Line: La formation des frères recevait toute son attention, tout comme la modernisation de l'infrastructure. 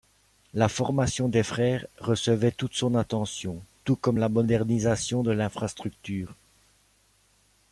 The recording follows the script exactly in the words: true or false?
true